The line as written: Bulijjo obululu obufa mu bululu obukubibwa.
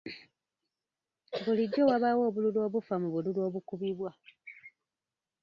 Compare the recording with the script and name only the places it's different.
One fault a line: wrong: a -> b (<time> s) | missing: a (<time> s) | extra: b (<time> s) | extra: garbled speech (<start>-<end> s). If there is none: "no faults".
extra: wabaawo (1.9 s)